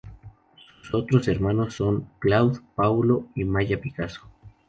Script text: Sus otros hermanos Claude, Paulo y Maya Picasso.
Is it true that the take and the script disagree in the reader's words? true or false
true